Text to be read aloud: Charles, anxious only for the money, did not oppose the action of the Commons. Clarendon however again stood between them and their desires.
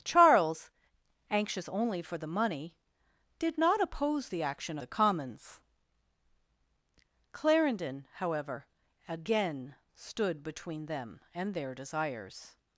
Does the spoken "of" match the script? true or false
false